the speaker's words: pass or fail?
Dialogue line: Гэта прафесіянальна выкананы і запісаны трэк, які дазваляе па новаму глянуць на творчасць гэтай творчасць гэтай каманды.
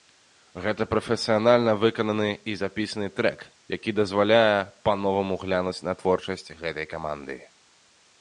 fail